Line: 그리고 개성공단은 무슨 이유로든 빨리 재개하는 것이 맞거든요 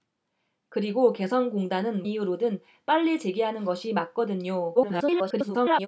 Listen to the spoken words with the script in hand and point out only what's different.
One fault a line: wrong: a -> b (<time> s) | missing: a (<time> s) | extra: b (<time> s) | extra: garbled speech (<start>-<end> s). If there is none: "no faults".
missing: 무슨 (2.0 s)
extra: garbled speech (4.7-5.9 s)